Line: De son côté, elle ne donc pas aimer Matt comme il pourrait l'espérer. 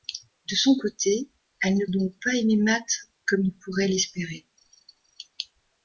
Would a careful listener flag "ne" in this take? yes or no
no